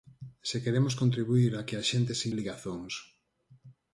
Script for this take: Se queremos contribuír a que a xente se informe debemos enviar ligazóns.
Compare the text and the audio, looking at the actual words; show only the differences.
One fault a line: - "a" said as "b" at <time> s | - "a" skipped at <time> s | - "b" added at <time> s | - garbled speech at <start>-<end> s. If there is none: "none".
- "informe debemos enviar" skipped at 2.3 s